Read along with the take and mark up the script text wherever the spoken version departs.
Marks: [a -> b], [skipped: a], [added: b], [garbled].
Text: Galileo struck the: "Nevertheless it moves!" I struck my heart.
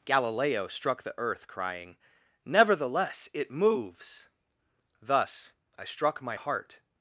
Galileo struck the: [added: earth crying] "Nevertheless it moves!" [added: Thus] I struck my heart.